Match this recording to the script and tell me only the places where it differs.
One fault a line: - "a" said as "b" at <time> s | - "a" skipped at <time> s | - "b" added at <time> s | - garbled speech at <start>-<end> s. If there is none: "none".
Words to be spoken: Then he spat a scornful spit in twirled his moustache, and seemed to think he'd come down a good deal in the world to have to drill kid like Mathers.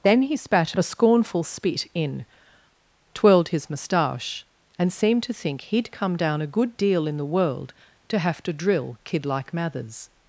none